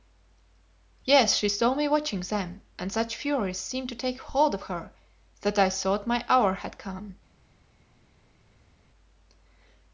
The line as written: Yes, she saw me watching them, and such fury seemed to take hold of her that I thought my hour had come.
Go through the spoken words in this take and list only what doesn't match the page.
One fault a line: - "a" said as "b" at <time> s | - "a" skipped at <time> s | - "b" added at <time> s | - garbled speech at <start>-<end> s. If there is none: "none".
none